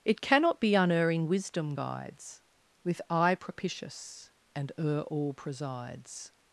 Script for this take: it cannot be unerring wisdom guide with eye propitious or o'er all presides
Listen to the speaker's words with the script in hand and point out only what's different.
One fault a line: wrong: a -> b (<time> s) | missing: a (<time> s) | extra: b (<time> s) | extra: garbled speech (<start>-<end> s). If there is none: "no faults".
wrong: guide -> guides (1.7 s)
wrong: or -> and (4.5 s)